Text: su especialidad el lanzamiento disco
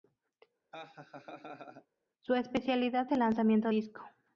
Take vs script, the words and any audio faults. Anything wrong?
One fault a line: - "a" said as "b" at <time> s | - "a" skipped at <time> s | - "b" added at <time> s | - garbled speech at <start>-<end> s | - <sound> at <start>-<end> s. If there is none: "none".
- laugh at 0.7-1.9 s